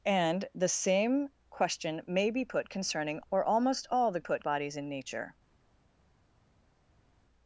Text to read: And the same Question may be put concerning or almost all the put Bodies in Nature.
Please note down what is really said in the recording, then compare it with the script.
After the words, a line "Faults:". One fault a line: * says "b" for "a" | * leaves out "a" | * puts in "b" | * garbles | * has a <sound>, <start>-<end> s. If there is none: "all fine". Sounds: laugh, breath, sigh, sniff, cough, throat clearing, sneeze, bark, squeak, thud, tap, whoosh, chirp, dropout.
And the same Question may be put concerning or almost all the put Bodies in Nature.
Faults:
all fine